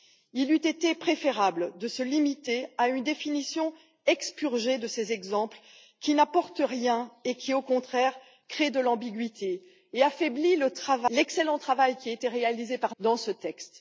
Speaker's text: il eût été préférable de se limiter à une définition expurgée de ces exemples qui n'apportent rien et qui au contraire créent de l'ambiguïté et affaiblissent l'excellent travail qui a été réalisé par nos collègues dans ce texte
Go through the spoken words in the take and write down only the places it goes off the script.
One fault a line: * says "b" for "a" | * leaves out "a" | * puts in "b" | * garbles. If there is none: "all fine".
* leaves out "nos collègues"